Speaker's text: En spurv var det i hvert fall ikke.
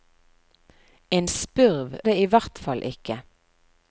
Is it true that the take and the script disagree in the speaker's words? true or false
true